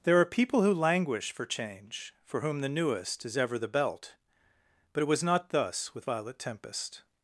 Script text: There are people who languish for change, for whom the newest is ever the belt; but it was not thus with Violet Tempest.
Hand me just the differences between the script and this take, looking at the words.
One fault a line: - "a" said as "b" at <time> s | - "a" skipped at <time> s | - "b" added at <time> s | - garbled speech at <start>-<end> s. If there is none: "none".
none